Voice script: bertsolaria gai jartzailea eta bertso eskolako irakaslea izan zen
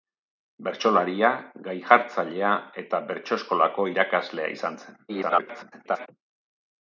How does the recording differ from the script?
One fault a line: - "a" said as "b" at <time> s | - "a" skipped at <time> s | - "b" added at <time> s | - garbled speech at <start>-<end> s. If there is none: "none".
- garbled speech at 5.1-6.1 s